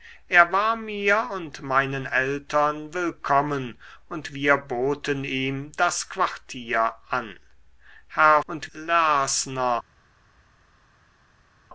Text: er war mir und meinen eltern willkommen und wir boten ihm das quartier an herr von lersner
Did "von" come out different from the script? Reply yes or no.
yes